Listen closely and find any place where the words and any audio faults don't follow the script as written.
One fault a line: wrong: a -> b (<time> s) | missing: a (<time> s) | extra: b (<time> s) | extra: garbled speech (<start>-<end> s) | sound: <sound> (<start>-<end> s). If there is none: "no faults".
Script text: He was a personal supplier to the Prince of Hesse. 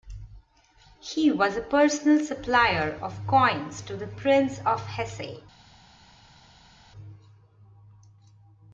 extra: of coins (3.0 s)